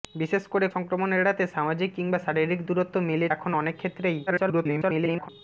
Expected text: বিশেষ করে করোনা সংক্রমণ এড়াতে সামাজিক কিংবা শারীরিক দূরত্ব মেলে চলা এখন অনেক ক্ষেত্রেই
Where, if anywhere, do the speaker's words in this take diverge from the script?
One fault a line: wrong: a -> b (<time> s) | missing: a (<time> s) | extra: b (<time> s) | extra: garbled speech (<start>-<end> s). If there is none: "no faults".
missing: করোনা (0.7 s)
missing: চলা (3.3 s)
extra: garbled speech (4.3-5.3 s)